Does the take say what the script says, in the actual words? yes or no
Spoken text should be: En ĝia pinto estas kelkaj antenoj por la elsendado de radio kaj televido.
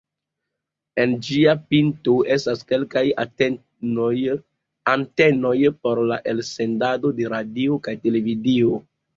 yes